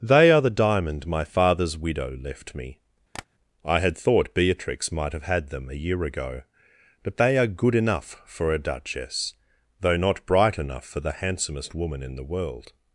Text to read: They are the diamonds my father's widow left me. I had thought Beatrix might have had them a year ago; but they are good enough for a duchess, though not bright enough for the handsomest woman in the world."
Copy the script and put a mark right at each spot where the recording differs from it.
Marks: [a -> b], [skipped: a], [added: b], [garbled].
They are the [diamonds -> diamond] my father's widow left me. I had thought Beatrix might have had them a year ago; but they are good enough for a duchess, though not bright enough for the handsomest woman in the world."